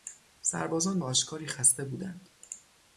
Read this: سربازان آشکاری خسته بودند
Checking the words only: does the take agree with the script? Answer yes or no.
yes